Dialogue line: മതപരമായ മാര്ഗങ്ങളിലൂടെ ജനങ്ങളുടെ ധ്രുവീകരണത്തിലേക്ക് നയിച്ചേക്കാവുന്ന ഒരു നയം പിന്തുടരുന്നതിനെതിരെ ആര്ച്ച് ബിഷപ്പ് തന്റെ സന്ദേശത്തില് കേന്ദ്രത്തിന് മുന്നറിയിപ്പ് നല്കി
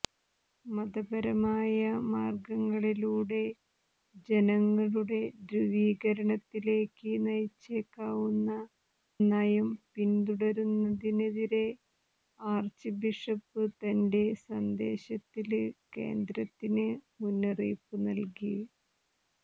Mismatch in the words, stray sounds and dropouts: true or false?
true